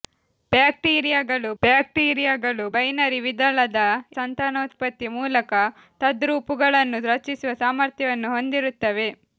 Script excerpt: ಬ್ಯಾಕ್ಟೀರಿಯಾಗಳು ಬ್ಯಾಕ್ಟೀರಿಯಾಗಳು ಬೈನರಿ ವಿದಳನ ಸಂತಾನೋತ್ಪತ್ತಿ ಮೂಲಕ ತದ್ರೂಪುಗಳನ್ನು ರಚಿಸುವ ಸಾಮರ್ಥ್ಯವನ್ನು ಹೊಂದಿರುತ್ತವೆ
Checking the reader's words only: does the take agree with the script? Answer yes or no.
yes